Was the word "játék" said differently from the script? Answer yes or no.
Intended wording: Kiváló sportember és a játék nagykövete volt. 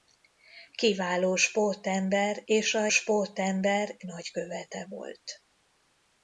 yes